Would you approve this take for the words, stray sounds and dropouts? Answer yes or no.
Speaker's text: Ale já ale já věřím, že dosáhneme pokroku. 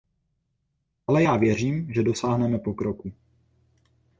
no